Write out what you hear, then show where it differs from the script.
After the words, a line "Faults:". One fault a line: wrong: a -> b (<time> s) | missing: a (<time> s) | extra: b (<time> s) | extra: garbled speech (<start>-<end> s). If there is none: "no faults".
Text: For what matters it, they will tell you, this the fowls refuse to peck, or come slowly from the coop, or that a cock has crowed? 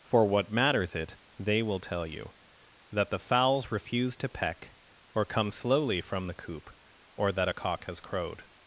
For what matters it, they will tell you, that the fowls refuse to peck, or come slowly from the coop, or that a cock has crowed?
Faults:
wrong: this -> that (2.9 s)